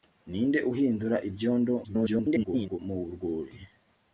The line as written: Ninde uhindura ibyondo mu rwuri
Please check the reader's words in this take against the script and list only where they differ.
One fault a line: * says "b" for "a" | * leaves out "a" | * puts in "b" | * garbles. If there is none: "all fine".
* garbles